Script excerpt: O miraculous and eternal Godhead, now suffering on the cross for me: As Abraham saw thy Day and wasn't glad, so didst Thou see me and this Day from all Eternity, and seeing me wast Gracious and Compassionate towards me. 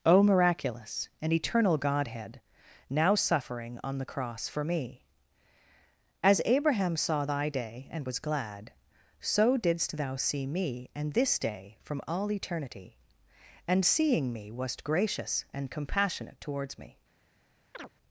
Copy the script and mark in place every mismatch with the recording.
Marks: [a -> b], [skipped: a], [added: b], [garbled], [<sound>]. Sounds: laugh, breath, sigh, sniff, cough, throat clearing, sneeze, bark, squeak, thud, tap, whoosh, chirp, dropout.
O miraculous and eternal Godhead, now suffering on the cross for me: As Abraham saw thy Day and [wasn't -> was] glad, so didst Thou see me and this Day from all Eternity, and seeing me wast Gracious and Compassionate towards me. [chirp]